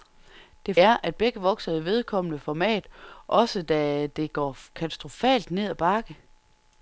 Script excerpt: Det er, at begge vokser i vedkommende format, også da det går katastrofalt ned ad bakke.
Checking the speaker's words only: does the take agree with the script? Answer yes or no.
yes